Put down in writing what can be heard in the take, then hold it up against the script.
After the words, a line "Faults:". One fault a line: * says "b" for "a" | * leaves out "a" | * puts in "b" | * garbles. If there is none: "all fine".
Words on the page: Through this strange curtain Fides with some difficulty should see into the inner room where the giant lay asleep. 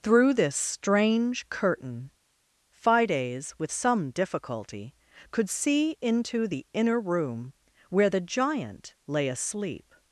Through this strange curtain Fides with some difficulty could see into the inner room where the giant lay asleep.
Faults:
* says "could" for "should"